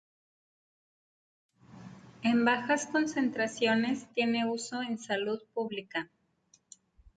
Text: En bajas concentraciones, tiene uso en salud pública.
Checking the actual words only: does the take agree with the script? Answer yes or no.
yes